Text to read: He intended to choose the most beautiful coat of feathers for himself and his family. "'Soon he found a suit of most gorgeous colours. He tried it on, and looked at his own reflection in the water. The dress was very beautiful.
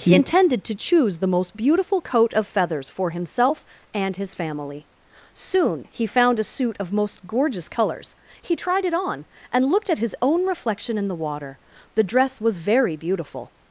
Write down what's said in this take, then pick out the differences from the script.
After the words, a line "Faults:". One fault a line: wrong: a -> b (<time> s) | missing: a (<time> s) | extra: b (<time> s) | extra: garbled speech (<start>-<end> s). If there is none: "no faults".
He intended to choose the most beautiful coat of feathers for himself and his family. "'Soon he found a suit of most gorgeous colours. He tried it on, and looked at his own reflection in the water. The dress was very beautiful.
Faults:
no faults